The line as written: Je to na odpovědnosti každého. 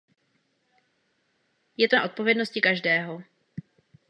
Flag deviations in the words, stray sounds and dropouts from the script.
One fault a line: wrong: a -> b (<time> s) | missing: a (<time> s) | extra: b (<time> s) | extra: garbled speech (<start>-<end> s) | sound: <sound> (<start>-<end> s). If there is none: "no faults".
no faults